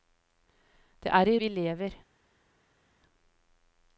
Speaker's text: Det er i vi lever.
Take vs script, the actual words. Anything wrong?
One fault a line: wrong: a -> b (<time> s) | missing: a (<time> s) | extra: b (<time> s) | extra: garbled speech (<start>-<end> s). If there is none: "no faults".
no faults